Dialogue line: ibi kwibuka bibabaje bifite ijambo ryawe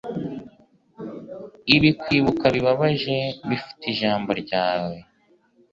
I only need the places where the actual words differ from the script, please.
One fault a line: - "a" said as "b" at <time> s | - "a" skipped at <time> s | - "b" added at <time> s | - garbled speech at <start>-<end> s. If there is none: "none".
none